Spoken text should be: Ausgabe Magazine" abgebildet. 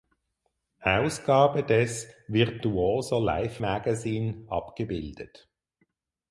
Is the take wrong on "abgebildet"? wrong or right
right